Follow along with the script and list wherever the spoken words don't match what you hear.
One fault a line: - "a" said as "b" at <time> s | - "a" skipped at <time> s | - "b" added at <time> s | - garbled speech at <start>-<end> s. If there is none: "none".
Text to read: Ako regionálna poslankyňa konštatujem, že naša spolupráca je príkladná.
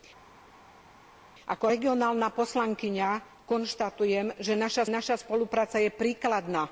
- "naša" added at 4.9 s